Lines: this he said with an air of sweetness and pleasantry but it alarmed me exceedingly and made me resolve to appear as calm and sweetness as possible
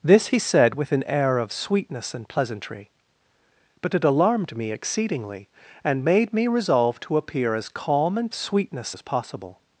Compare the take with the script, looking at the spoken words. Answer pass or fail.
pass